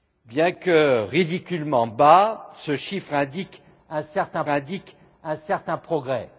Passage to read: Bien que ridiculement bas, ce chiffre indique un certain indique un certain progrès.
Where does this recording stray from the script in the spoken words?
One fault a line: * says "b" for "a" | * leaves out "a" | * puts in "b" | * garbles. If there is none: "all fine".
all fine